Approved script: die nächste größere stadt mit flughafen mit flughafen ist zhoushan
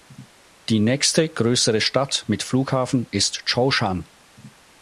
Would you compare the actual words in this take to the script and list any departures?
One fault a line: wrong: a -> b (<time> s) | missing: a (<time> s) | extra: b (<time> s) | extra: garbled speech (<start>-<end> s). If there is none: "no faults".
missing: mit flughafen (3.1 s)